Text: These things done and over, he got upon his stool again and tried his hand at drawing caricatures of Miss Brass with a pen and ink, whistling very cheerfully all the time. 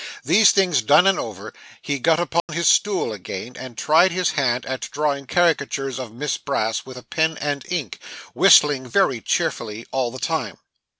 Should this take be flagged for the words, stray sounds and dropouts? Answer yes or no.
yes